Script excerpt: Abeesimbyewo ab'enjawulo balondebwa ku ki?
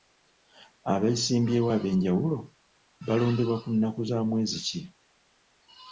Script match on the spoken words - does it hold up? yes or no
no